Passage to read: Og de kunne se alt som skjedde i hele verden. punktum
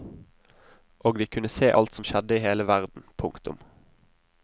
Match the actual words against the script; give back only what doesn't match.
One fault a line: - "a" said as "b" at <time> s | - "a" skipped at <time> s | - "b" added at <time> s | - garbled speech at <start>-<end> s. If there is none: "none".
none